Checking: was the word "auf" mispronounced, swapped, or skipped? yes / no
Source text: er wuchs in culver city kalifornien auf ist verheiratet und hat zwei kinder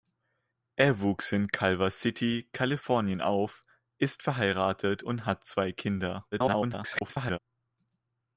no